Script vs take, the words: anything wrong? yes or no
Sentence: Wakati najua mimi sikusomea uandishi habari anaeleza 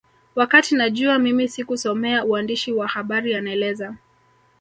yes